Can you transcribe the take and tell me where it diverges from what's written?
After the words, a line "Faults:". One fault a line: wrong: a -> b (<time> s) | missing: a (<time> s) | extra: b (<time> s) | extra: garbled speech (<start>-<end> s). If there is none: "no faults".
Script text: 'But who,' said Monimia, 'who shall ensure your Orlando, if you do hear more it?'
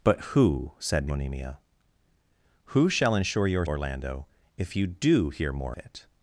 'But who,' said Monimia, 'who shall ensure your Orlando, if you do hear more it?'
Faults:
no faults